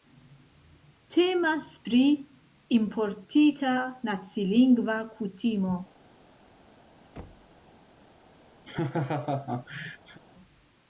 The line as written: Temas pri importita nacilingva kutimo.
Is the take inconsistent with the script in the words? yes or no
no